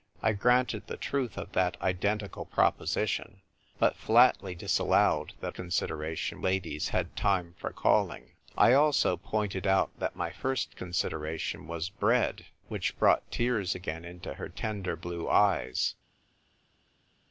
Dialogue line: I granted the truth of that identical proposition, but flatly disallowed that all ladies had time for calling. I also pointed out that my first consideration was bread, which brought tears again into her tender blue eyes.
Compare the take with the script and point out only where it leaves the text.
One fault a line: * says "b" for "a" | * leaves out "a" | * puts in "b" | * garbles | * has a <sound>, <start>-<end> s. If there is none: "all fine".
* says "consideration" for "all"